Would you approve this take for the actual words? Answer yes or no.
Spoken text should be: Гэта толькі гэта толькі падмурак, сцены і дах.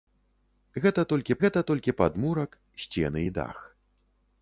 yes